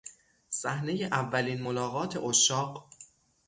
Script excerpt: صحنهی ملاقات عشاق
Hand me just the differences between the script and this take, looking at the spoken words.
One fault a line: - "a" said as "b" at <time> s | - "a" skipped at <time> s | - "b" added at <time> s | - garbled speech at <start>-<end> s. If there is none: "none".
- "اولین" added at 1.0 s